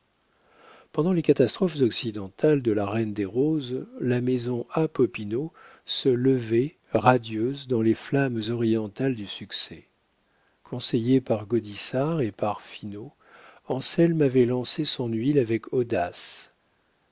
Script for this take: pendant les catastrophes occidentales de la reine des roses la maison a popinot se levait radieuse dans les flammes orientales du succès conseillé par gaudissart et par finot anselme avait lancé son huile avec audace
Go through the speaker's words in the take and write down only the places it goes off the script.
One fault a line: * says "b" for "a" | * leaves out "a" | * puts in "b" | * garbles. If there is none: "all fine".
all fine